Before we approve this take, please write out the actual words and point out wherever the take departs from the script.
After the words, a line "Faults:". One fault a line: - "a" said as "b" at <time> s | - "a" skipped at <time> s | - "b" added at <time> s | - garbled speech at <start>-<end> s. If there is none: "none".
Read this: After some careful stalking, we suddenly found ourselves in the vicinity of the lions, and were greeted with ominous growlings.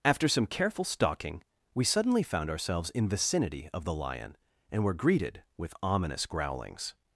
After some careful stalking, we suddenly found ourselves in vicinity of the lion, and were greeted with ominous growlings.
Faults:
- "the" skipped at 3.1 s
- "lions" said as "lion" at 3.9 s